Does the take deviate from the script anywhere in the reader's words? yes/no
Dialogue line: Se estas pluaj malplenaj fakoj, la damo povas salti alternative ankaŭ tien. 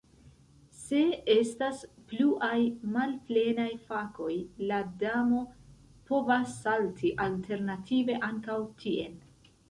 no